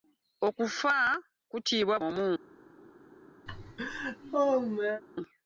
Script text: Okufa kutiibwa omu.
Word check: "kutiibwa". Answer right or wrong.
right